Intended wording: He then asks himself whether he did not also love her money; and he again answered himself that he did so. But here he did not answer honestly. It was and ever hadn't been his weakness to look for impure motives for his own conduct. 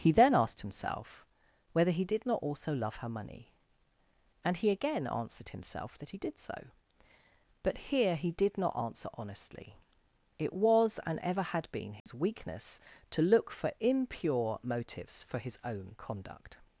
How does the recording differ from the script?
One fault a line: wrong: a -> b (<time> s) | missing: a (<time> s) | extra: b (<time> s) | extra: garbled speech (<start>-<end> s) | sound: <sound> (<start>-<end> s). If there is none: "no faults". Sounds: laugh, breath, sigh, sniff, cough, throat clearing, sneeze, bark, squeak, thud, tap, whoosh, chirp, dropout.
wrong: asks -> asked (0.3 s)
wrong: hadn't -> had (11.4 s)
sound: dropout (12.0-12.1 s)